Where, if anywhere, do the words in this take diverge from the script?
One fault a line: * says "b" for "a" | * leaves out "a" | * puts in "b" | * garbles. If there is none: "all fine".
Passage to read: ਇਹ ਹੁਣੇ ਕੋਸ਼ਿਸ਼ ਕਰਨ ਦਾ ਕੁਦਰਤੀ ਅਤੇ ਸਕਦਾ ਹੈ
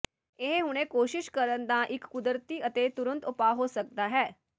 * puts in "ਇੱਕ"
* puts in "ਤੁਰੰਤ ਉਪਾਅ ਹੋ"